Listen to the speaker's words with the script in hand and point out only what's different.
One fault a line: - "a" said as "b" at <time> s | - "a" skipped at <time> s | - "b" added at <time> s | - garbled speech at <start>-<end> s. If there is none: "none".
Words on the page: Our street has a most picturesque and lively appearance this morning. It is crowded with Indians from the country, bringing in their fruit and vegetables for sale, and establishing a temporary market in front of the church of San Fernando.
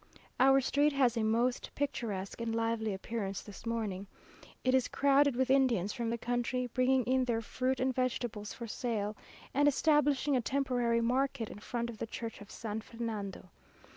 none